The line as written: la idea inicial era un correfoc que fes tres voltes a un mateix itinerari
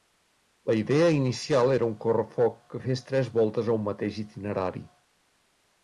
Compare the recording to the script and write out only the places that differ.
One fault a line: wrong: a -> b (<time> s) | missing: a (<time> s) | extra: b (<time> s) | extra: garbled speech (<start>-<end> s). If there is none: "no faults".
no faults